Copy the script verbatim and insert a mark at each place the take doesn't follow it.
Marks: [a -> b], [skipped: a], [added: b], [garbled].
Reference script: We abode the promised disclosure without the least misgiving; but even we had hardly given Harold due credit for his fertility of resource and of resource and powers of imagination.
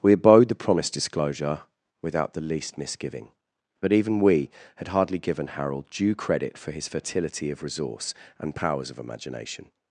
We abode the promised disclosure without the least misgiving; but even we had hardly given Harold due credit for his fertility of resource and [skipped: of resource and] powers of imagination.